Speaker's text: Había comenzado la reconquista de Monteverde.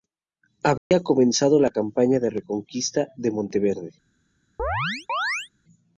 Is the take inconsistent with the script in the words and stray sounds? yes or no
yes